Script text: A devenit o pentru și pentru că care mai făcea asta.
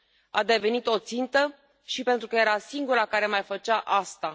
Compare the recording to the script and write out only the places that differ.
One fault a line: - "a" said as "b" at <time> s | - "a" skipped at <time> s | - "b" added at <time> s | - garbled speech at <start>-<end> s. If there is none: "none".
- "pentru" said as "țintă" at 1.0 s
- "era singura" added at 2.3 s